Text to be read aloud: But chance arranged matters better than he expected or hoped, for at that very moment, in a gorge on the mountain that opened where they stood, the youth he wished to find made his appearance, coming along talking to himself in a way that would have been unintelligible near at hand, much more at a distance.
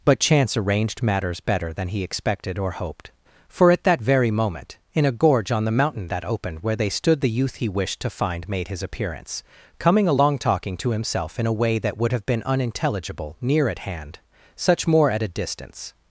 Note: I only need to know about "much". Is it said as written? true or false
false